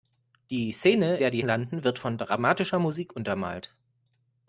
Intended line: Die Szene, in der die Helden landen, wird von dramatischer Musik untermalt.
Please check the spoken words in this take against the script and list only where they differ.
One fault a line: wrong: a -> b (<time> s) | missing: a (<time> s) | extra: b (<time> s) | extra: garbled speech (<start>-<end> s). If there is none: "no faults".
missing: in (1.2 s)
missing: Helden (1.5 s)